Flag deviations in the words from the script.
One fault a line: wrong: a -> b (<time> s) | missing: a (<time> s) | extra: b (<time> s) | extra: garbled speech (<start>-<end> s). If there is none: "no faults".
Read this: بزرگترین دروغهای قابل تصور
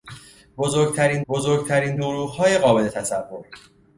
extra: بزرگترین (1.3 s)